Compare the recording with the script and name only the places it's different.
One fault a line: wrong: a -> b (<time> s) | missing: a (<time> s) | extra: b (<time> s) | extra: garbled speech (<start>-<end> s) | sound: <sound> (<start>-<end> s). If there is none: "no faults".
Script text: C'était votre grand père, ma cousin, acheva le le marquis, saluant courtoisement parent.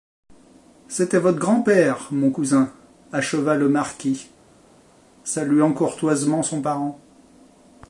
wrong: ma -> mon (2.1 s)
missing: le (3.7 s)
extra: son (6.4 s)